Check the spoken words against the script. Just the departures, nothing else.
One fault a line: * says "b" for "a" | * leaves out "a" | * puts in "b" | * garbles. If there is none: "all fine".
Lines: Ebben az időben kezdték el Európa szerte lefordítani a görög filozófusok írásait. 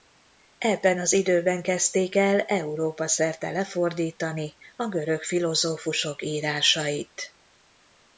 all fine